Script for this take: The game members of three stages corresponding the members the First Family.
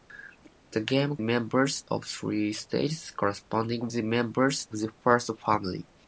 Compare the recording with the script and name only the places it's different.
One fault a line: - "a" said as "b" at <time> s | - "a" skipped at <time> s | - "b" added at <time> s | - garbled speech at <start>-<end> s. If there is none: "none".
none